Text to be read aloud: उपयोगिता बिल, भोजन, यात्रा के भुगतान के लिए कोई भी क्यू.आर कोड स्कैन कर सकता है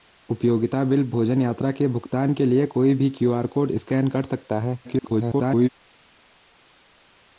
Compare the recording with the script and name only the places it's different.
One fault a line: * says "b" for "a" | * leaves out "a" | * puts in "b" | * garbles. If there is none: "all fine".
* garbles